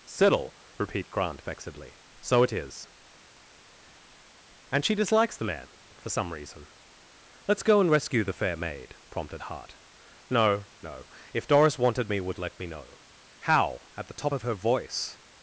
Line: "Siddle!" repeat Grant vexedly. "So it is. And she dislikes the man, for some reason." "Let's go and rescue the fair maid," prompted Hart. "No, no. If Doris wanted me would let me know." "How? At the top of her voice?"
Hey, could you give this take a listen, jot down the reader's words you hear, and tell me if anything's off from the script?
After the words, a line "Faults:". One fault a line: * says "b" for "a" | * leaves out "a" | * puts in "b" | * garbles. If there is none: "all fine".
"Siddle!" repeat Grant vexedly. "So it is. And she dislikes the man, for some reason." "Let's go and rescue the fair maid," prompted Hart. "No, no. If Doris wanted me would let me know." "How? At the top of her voice?"
Faults:
all fine